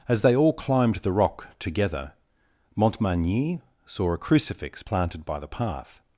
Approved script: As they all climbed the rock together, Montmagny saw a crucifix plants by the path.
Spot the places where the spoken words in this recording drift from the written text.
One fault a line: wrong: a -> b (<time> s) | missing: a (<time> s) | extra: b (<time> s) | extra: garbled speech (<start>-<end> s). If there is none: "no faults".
wrong: plants -> planted (4.8 s)